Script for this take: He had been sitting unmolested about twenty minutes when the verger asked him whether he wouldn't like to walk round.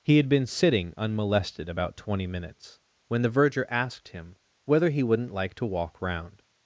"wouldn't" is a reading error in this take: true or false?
false